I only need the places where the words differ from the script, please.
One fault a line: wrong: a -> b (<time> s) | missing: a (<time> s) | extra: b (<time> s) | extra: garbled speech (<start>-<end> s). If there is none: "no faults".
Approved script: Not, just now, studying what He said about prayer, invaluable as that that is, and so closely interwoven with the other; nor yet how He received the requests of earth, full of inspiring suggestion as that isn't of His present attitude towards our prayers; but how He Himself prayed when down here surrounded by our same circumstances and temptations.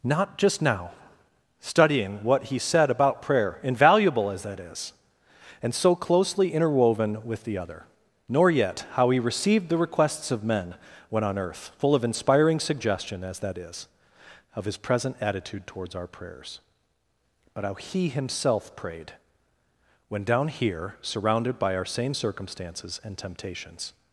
missing: that (4.6 s)
extra: men when on (10.4 s)
wrong: isn't -> is (13.6 s)